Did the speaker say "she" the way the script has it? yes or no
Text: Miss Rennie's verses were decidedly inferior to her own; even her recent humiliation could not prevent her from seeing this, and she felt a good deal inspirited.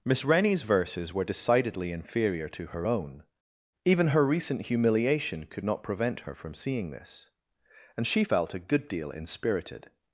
yes